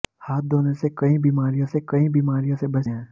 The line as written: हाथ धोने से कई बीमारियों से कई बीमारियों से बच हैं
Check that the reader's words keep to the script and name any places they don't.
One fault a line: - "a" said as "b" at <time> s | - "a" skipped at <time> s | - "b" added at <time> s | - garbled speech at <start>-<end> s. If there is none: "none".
none